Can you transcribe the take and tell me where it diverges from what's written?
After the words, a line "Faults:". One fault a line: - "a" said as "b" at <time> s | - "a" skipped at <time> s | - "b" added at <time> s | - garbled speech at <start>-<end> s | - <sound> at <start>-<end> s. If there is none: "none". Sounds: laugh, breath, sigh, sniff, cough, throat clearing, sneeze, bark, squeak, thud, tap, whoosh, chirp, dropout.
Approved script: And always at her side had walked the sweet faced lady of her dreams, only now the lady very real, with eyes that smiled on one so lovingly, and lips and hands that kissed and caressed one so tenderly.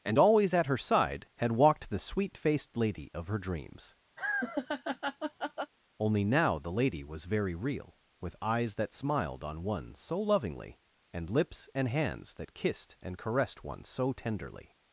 And always at her side had walked the sweet faced lady of her dreams, only now the lady was very real, with eyes that smiled on one so lovingly, and lips and hands that kissed and caressed one so tenderly.
Faults:
- laugh at 4.2-5.7 s
- "was" added at 7.0 s